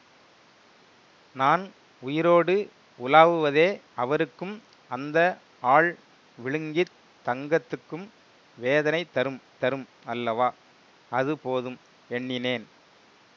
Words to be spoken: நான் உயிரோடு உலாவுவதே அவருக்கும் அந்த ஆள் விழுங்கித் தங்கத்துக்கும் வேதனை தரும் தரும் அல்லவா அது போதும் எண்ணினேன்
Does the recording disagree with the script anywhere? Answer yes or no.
no